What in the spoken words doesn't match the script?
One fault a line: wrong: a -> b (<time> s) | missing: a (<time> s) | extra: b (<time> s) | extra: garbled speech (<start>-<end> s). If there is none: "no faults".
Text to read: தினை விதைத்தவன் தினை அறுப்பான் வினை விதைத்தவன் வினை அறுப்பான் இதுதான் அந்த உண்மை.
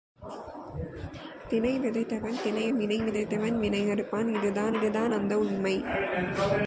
missing: அறுப்பான் (2.7 s)
extra: இதுதான் (4.7 s)